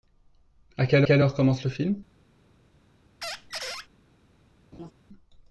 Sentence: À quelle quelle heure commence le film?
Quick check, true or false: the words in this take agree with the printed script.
true